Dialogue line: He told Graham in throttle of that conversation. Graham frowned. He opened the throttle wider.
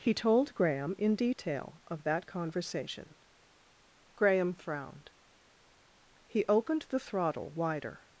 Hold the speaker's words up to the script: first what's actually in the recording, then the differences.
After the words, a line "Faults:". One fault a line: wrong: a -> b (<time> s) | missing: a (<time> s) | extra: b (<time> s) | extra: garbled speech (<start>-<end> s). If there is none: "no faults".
He told Graham in detail of that conversation. Graham frowned. He opened the throttle wider.
Faults:
wrong: throttle -> detail (1.1 s)